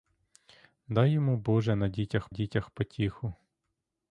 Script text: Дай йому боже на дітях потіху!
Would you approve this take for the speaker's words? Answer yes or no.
no